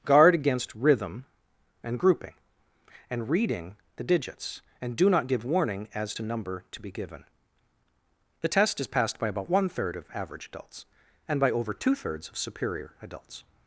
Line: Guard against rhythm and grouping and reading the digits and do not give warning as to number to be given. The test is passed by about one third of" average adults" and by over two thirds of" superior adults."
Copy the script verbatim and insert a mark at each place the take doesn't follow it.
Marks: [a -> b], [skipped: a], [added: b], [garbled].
Guard against rhythm and grouping and reading the digits and do not give warning as to number to be given. The test is passed by about one third of" average adults" and by over two thirds of" superior adults."